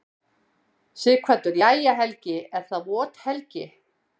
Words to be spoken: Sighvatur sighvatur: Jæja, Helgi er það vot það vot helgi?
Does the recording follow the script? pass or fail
fail